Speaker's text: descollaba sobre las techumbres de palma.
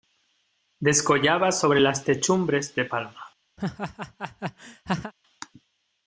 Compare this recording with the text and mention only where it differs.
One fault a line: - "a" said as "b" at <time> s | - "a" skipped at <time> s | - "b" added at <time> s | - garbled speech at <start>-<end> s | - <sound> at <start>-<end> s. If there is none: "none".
- laugh at 3.6-5.1 s